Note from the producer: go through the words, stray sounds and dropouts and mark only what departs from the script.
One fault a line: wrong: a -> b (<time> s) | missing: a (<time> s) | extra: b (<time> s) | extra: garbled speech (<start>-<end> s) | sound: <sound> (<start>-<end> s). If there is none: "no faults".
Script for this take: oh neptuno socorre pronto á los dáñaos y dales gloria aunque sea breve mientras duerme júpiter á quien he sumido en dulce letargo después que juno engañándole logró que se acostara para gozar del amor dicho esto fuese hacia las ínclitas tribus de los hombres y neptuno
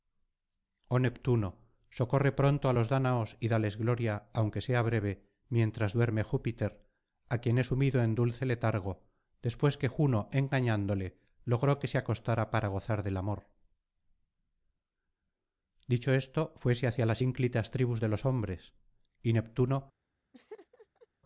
sound: laugh (20.3-21.1 s)